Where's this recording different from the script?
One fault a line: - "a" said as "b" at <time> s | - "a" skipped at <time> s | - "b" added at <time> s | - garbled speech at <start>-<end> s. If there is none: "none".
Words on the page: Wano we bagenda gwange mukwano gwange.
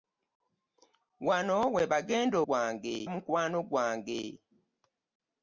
none